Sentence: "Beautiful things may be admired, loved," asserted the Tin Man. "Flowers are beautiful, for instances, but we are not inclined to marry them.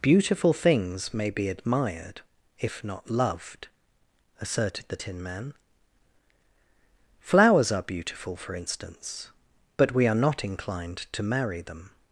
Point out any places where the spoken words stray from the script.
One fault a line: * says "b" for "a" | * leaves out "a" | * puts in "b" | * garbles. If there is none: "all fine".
* puts in "if not"
* says "instance" for "instances"